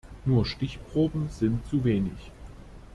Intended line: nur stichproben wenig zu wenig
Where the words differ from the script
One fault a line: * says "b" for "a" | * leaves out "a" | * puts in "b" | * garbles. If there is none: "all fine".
* says "sind" for "wenig"